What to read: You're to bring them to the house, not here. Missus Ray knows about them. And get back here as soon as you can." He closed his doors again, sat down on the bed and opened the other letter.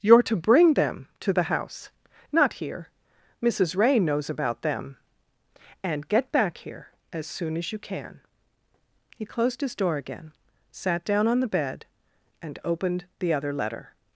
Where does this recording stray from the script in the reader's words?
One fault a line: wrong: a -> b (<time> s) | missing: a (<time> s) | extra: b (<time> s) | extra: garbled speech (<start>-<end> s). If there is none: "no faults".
wrong: doors -> door (9.8 s)